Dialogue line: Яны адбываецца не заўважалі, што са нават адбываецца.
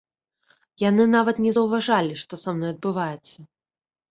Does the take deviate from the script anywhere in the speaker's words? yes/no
yes